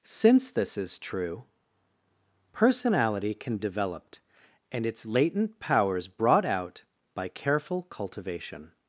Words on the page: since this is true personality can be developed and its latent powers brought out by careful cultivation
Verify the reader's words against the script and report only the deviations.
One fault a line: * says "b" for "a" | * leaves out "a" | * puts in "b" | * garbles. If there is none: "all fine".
* leaves out "be"